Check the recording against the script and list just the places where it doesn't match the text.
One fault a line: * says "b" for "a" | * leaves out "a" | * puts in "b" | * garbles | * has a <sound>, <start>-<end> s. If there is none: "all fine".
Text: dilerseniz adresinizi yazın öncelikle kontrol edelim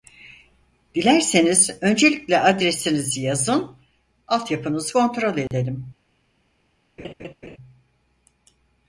* puts in "öncelikle"
* says "altyapınızı" for "öncelikle"
* has a dropout, 5.5-5.5 s
* has a laugh, 7.0-7.6 s